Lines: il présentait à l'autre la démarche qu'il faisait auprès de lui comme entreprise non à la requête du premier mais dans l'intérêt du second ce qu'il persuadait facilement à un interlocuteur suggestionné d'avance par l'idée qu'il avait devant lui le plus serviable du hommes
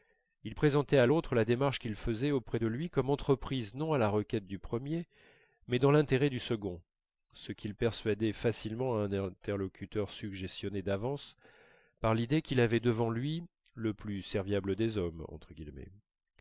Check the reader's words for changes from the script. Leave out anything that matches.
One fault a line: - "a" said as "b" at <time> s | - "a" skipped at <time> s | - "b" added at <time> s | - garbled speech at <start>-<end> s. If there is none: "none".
- "du" said as "des" at 14.8 s